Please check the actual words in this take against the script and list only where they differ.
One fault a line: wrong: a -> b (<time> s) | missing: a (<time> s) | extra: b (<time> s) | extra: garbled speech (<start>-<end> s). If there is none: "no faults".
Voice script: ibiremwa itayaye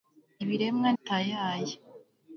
no faults